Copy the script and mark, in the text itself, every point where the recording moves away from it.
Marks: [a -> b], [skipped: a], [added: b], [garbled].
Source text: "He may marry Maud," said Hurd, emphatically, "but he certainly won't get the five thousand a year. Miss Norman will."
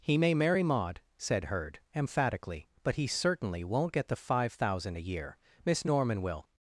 "He may marry Maud," said Hurd, emphatically, "but he certainly won't get the five thousand a year. Miss Norman will."